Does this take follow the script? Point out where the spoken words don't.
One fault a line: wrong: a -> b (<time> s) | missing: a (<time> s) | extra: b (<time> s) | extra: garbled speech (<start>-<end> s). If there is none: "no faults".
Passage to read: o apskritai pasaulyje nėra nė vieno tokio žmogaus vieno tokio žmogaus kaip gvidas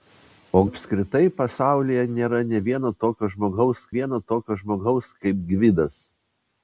no faults